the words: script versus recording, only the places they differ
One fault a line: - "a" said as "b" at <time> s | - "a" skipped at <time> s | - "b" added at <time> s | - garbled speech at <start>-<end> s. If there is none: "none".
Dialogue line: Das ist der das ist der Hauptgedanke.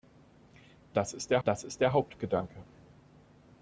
none